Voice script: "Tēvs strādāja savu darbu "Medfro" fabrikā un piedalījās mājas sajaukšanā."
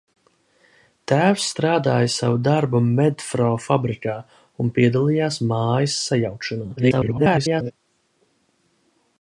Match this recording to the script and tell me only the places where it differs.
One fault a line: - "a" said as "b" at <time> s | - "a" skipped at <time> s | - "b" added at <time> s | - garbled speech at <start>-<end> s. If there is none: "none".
- garbled speech at 6.8-7.7 s